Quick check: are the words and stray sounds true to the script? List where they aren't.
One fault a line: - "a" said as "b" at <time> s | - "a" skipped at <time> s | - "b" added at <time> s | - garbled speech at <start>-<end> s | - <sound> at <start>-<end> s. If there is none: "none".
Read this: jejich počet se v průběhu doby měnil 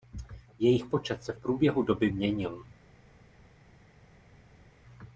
none